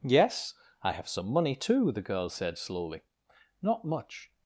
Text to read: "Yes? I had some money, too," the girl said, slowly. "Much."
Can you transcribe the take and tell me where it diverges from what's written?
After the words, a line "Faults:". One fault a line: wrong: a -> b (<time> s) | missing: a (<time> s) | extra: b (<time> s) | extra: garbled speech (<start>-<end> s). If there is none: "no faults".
"Yes? I have some money, too," the girl said, slowly. "Not much."
Faults:
wrong: had -> have (0.9 s)
extra: Not (3.6 s)